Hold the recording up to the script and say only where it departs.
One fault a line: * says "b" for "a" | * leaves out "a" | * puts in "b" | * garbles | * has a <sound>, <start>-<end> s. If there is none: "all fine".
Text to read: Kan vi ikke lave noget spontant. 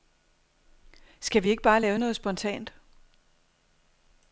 * says "Skal" for "Kan"
* puts in "bare"